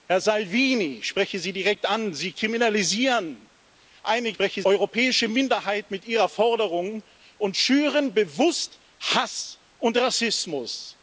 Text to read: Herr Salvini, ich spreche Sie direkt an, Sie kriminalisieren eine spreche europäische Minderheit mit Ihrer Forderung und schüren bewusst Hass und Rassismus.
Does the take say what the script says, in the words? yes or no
yes